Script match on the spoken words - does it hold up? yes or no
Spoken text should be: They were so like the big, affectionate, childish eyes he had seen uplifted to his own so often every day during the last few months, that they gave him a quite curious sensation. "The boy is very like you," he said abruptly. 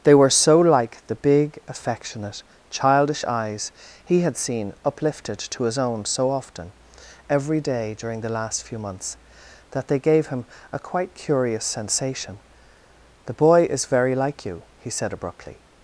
yes